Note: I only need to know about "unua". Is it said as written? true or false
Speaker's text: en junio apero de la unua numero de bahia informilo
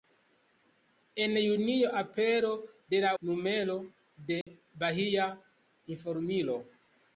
false